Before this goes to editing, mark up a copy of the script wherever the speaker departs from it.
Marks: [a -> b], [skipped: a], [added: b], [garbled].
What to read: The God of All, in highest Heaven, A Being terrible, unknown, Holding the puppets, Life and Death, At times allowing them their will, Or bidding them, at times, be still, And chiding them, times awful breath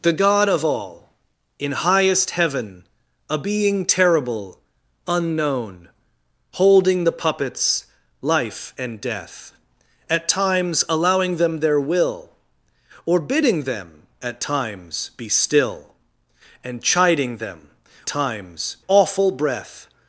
The God of All, in highest Heaven, A Being terrible, unknown, Holding the puppets, Life and Death, At times allowing them their will, Or bidding them, at times, be still, And chiding them, times awful breath